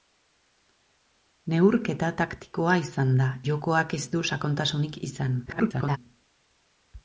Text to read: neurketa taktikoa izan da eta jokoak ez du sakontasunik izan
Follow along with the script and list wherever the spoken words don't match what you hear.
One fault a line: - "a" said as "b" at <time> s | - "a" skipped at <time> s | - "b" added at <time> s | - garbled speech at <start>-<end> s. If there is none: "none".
- "eta" skipped at 3.3 s
- garbled speech at 5.5-6.0 s